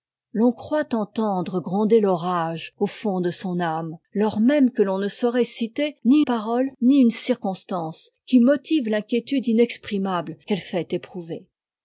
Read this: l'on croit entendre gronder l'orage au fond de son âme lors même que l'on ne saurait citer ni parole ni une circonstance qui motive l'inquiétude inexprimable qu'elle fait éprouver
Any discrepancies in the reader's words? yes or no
no